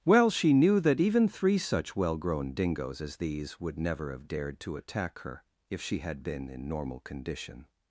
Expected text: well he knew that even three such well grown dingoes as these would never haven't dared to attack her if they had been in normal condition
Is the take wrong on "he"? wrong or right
wrong